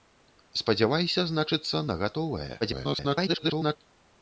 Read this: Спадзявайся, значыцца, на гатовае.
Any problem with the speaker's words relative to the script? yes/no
yes